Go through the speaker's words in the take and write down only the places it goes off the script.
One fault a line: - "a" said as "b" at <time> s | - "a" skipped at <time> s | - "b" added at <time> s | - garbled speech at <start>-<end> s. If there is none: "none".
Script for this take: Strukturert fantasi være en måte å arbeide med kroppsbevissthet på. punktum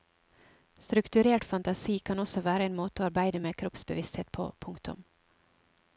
- "kan også" added at 2.0 s